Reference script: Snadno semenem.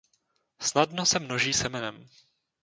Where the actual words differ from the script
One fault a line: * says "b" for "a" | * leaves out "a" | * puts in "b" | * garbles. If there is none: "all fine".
* puts in "se množí"